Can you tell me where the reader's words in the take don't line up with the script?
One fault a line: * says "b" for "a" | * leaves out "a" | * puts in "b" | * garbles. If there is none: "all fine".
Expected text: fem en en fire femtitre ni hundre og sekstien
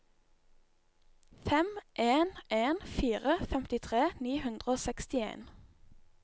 all fine